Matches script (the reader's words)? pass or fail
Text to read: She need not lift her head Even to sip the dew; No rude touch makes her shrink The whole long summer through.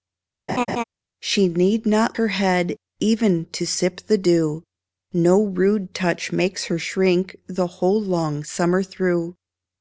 fail